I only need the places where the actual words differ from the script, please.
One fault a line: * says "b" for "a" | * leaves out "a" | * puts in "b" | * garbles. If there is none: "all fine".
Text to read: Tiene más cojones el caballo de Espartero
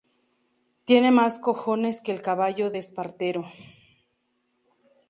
* puts in "que"